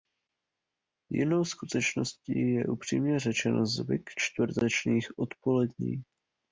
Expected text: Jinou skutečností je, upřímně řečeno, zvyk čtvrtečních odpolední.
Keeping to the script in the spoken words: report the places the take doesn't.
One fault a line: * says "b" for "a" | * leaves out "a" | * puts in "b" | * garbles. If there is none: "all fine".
all fine